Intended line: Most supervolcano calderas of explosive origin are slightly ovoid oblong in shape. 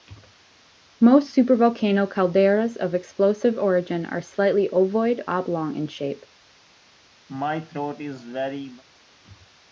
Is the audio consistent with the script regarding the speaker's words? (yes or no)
yes